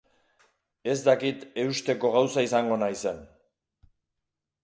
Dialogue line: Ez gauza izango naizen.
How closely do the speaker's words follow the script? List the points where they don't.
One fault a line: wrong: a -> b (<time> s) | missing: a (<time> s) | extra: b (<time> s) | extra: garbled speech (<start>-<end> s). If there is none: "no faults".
extra: dakit eusteko (1.1 s)